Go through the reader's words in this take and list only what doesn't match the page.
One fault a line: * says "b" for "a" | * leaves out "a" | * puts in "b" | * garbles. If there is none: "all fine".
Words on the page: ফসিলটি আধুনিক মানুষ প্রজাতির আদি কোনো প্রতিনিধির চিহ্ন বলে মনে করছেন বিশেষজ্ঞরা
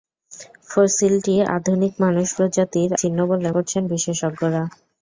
* leaves out "আদি কোনো প্রতিনিধির"
* leaves out "মনে"